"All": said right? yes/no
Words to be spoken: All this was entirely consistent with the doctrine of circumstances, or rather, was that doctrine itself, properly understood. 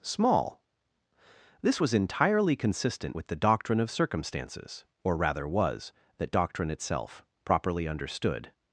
no